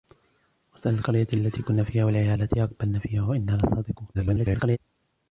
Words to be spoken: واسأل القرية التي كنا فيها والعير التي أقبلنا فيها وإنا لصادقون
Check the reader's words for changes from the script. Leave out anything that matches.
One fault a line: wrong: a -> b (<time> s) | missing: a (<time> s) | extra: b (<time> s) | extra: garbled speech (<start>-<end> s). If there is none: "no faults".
extra: garbled speech (4.1-4.8 s)